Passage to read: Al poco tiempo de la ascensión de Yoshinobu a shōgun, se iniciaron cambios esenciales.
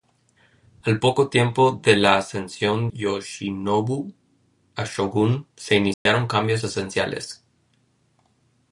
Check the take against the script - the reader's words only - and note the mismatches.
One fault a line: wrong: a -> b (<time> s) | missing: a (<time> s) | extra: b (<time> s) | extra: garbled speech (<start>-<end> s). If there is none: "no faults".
missing: de (2.9 s)